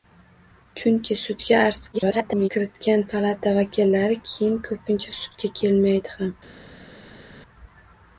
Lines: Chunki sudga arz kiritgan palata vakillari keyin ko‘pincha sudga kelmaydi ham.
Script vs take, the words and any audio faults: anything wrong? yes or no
yes